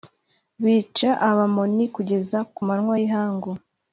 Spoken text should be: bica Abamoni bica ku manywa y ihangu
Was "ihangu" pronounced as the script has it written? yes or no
yes